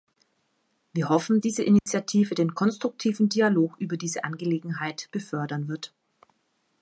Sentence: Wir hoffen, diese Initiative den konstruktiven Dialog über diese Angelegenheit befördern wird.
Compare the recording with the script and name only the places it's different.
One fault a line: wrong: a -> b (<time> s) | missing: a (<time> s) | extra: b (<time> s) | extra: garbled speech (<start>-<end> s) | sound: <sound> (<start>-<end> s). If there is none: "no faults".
sound: dropout (1.8-1.9 s)